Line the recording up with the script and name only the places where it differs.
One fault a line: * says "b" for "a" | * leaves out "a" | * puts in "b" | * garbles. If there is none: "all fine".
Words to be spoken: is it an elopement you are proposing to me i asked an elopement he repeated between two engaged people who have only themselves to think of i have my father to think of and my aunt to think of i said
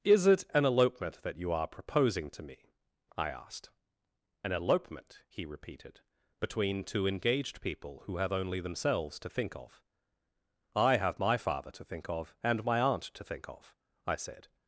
* puts in "that"